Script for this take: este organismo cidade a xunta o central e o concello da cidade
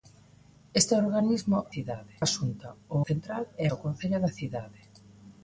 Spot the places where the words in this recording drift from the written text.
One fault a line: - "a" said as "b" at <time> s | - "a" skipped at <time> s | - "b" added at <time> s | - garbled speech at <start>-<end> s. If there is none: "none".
none